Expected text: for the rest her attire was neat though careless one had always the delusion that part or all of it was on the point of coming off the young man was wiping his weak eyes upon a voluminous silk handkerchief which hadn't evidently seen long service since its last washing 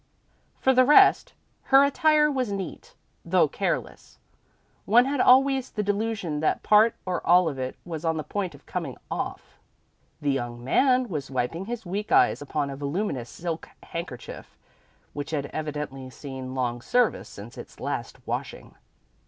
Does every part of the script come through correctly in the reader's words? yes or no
no